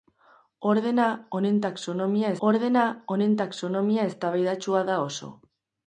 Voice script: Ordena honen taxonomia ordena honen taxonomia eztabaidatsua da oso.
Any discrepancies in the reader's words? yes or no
no